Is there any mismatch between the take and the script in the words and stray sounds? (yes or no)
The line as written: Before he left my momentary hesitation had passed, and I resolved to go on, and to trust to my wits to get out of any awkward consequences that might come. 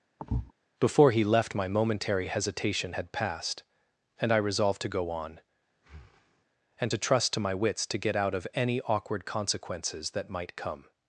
yes